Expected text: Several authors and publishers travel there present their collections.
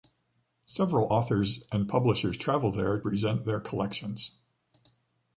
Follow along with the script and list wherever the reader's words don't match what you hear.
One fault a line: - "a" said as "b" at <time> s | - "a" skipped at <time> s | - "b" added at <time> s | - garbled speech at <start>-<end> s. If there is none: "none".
none